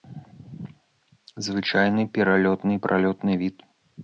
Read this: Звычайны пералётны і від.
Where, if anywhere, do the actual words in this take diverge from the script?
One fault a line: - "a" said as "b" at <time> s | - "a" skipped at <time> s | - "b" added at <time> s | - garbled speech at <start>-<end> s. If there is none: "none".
- "пралётны" added at 2.9 s